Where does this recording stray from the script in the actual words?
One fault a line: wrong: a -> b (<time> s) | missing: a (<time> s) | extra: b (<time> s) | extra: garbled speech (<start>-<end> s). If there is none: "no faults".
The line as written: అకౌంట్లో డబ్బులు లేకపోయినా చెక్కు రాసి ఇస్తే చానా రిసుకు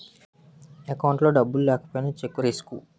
missing: రాసి ఇస్తే చానా (2.4 s)